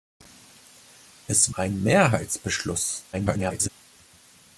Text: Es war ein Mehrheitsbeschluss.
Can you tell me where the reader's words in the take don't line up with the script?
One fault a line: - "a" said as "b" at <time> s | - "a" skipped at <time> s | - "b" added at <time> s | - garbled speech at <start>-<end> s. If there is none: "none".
- "war" skipped at 1.5 s
- garbled speech at 3.1-3.7 s